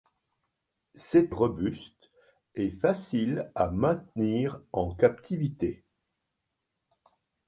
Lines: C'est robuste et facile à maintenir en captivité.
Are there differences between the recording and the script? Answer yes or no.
no